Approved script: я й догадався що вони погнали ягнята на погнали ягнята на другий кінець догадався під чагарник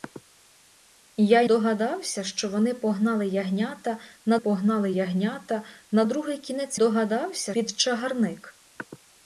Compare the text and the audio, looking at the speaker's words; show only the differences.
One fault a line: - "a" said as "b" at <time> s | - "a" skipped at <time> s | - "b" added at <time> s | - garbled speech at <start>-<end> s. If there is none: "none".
none